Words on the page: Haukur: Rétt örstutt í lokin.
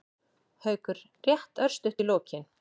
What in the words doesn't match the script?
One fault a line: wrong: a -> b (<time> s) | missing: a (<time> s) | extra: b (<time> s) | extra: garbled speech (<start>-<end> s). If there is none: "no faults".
no faults